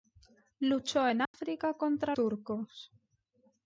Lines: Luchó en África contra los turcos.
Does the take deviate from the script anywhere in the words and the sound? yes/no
yes